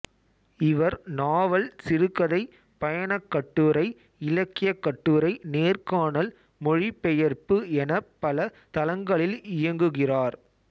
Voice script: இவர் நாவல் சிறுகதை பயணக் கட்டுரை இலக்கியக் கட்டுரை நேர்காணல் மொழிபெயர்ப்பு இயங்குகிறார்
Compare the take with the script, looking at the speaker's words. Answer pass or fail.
fail